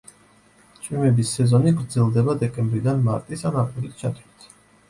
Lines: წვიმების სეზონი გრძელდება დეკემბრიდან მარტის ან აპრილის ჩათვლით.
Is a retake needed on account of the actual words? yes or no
no